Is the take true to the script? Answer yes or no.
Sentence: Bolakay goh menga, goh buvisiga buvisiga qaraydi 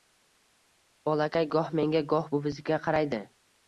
no